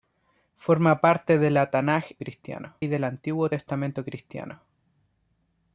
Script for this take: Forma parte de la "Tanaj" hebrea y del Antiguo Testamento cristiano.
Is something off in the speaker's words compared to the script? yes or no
yes